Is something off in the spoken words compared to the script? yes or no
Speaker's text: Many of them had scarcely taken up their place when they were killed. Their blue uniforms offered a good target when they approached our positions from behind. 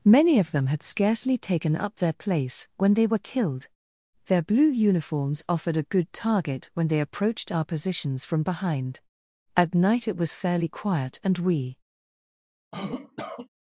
yes